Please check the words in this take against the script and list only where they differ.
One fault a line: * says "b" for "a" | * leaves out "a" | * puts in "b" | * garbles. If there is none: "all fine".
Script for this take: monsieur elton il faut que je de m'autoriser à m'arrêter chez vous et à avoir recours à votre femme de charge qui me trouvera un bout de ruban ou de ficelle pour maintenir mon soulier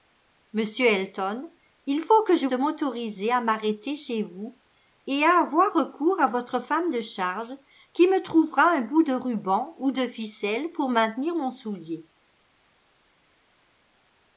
all fine